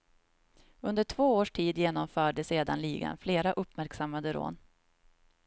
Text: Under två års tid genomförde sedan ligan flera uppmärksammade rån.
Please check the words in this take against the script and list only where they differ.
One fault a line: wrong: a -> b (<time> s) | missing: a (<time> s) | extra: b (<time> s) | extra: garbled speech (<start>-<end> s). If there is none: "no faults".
no faults